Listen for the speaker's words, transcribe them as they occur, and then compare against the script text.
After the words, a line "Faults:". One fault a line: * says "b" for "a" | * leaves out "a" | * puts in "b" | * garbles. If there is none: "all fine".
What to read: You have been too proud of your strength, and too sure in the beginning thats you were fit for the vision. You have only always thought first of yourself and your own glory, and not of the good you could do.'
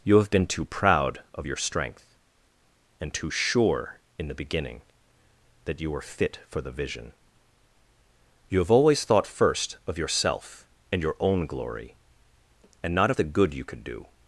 You have been too proud of your strength, and too sure in the beginning that you were fit for the vision. You have always thought first of yourself and your own glory, and not of the good you could do.'
Faults:
* says "that" for "thats"
* leaves out "only"